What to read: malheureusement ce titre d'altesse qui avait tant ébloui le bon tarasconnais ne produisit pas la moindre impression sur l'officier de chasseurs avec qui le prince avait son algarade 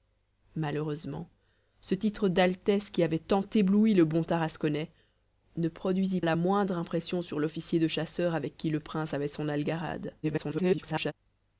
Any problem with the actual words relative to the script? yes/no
yes